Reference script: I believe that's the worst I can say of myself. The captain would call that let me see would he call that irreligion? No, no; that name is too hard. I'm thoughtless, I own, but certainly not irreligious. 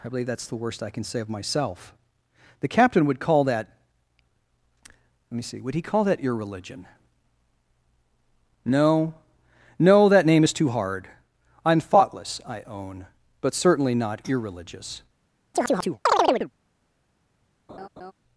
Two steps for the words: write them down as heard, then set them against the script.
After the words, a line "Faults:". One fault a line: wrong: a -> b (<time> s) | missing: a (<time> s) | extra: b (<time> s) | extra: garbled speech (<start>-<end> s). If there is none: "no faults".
I believe that's the worst I can say of myself. The captain would call that let me see would he call that irreligion? No, no; that name is too hard. I'm thoughtless, I own, but certainly not irreligious.
Faults:
no faults